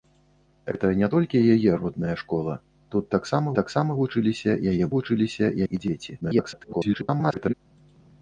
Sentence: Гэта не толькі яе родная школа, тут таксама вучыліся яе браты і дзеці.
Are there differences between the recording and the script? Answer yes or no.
yes